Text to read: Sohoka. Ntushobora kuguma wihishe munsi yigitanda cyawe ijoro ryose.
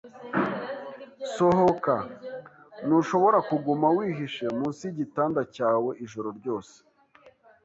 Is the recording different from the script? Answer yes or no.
no